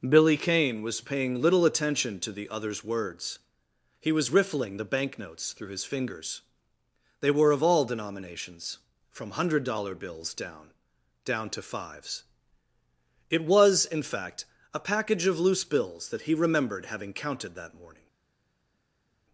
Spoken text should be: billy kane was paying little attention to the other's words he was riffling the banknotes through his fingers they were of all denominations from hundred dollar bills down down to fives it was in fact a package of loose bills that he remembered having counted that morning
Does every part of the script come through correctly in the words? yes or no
yes